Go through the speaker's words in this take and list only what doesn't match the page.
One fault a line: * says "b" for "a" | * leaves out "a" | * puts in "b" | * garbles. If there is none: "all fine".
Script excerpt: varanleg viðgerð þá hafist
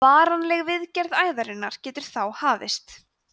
* puts in "æðarinnar getur"